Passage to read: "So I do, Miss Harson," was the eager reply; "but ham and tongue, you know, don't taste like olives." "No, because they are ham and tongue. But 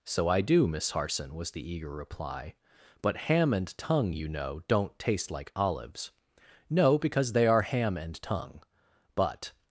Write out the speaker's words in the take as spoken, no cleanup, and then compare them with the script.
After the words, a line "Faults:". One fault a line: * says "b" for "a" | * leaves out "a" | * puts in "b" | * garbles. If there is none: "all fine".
"So I do, Miss Harson," was the eager reply; "but ham and tongue, you know, don't taste like olives." "No, because they are ham and tongue. But
Faults:
all fine